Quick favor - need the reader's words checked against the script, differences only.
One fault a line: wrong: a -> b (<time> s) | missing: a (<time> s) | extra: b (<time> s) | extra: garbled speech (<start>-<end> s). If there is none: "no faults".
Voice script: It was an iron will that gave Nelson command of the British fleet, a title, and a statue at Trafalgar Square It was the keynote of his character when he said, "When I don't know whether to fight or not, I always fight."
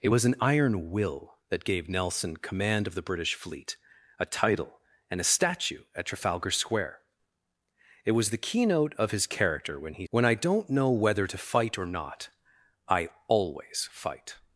missing: said (10.1 s)